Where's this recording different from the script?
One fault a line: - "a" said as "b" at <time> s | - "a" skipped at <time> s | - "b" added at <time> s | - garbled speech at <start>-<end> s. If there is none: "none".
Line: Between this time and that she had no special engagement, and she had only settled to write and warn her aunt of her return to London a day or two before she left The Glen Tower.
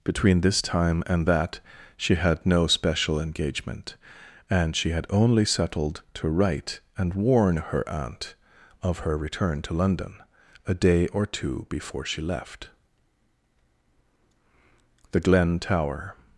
none